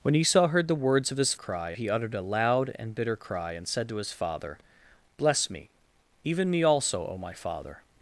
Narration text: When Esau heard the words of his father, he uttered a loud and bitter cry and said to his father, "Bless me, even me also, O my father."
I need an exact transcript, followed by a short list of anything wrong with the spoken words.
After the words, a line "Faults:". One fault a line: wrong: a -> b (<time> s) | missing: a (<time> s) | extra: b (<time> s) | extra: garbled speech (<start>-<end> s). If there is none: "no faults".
When Esau heard the words of his cry, he uttered a loud and bitter cry and said to his father, "Bless me, even me also, O my father."
Faults:
wrong: father -> cry (1.3 s)